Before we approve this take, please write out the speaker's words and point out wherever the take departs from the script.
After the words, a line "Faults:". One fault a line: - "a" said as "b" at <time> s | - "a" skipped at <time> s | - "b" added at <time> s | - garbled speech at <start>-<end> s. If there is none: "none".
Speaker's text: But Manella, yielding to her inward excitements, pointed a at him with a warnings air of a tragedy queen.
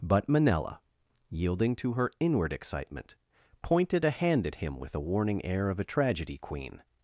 But Manella, yielding to her inward excitement, pointed a hand at him with a warning air of a tragedy queen.
Faults:
- "excitements" said as "excitement" at 2.5 s
- "hand" added at 4.1 s
- "warnings" said as "warning" at 5.0 s